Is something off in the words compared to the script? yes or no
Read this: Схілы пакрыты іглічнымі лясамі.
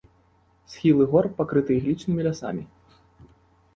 yes